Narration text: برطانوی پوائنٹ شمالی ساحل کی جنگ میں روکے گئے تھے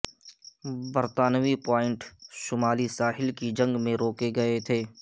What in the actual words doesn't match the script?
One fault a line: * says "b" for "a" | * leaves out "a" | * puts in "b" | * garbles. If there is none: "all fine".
all fine